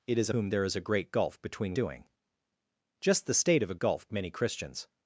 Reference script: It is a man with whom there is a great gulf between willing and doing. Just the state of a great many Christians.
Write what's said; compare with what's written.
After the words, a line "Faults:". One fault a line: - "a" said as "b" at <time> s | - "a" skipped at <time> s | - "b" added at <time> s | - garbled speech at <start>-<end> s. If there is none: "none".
It is a whom there is a great gulf between doing. Just the state of a gulf many Christians.
Faults:
- "man with" skipped at 0.3 s
- "willing and" skipped at 1.8 s
- "great" said as "gulf" at 3.8 s